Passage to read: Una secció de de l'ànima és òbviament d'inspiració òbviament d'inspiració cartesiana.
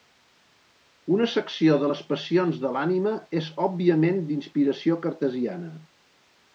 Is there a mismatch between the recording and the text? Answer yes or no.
yes